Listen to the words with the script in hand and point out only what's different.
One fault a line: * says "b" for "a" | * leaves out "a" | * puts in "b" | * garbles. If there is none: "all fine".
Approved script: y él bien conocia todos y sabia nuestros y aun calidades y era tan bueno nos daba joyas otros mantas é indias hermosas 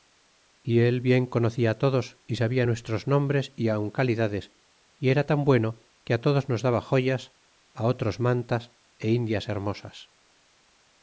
* puts in "nombres"
* puts in "que todos"